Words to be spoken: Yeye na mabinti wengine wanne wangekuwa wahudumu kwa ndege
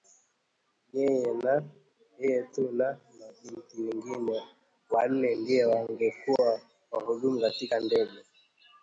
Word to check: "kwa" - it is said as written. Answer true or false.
false